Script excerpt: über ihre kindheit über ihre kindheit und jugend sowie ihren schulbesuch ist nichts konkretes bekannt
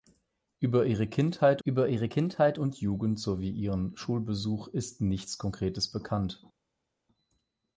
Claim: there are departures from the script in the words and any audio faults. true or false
false